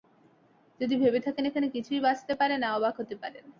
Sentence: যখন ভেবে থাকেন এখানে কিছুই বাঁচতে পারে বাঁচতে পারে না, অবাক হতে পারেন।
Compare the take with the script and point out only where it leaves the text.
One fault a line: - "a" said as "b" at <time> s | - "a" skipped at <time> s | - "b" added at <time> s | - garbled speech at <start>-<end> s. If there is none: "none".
- "যখন" said as "যদি" at 0.8 s
- "বাঁচতে পারে" skipped at 2.6 s